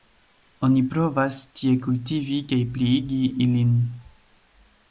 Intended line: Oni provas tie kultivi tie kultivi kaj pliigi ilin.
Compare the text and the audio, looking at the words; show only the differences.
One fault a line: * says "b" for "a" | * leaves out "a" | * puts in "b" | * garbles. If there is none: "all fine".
* leaves out "tie kultivi"